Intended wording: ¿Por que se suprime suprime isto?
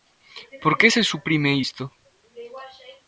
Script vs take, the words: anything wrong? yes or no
yes